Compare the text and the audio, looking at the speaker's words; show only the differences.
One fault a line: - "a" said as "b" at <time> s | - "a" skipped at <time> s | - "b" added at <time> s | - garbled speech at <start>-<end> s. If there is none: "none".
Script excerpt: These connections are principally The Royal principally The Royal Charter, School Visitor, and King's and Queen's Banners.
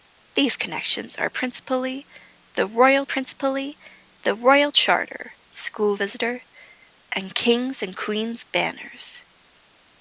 none